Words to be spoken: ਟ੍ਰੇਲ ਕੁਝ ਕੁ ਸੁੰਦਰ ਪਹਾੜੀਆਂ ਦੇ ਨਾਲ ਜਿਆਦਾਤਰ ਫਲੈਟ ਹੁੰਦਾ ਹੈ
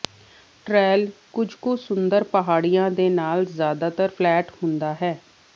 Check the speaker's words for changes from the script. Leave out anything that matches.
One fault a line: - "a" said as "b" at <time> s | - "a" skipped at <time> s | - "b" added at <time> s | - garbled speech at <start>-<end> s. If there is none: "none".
none